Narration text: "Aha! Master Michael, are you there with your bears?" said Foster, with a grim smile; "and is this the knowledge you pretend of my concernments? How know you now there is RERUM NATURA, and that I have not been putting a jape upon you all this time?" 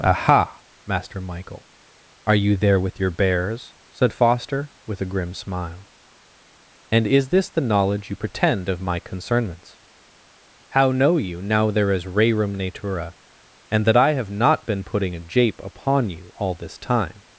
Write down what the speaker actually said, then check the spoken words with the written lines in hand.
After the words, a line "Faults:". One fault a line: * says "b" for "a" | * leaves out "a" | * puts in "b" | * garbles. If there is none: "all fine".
"Aha! Master Michael, are you there with your bears?" said Foster, with a grim smile; "and is this the knowledge you pretend of my concernments? How know you now there is RERUM NATURA, and that I have not been putting a jape upon you all this time?"
Faults:
all fine